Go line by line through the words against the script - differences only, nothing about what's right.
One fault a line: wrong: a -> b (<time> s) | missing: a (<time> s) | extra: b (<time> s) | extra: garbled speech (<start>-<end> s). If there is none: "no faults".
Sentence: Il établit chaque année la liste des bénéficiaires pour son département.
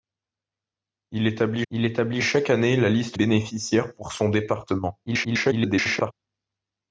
extra: il établit (1.7 s)
missing: des (3.2 s)
extra: garbled speech (5.1-6.1 s)